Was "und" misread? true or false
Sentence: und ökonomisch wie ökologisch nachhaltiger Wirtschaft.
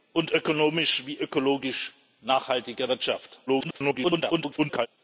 false